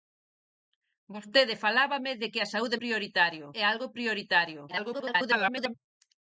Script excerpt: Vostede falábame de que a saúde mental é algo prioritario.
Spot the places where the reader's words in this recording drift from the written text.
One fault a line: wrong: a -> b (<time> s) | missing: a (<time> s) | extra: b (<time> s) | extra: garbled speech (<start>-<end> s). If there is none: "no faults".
wrong: mental -> prioritario (2.8 s)
extra: garbled speech (4.7-5.7 s)